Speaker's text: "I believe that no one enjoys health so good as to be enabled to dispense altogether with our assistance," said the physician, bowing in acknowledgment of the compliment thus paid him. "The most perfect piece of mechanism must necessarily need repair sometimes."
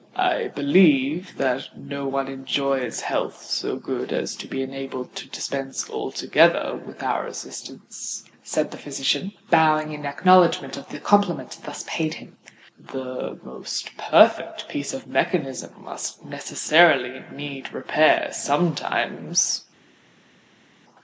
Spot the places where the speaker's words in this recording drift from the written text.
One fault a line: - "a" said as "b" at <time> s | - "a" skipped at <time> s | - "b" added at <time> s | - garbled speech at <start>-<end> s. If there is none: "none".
none